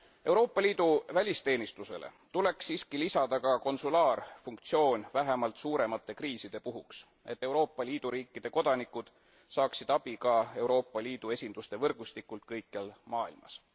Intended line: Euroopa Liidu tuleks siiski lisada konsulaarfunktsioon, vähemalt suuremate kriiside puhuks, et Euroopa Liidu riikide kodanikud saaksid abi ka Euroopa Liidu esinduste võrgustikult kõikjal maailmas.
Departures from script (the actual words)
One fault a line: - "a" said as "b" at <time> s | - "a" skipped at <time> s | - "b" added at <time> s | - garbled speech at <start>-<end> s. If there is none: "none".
- "välisteenistusele" added at 1.1 s
- "ka" added at 3.4 s